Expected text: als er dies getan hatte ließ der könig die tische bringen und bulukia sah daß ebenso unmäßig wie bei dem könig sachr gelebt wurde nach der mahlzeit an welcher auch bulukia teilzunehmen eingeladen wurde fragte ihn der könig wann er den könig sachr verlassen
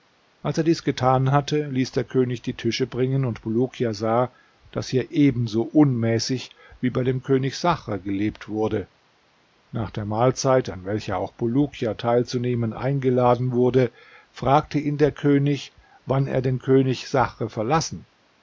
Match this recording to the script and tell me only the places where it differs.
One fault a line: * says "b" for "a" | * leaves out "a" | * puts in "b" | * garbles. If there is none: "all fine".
* puts in "hier"